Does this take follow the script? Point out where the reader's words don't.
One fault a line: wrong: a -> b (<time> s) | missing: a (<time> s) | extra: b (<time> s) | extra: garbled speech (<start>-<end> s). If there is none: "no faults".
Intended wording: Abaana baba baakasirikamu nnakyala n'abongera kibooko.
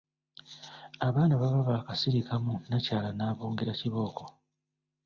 no faults